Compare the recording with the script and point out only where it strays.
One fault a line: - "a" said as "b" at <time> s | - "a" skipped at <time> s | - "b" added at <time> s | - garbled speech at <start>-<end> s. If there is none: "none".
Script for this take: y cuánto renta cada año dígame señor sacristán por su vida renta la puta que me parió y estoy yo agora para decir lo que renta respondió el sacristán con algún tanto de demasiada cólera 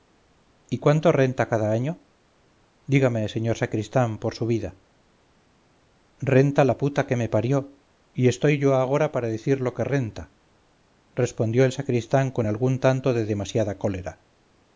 none